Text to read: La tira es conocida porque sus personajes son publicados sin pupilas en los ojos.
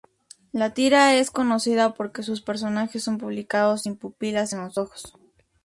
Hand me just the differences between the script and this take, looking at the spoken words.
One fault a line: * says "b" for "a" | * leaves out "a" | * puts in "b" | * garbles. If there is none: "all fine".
all fine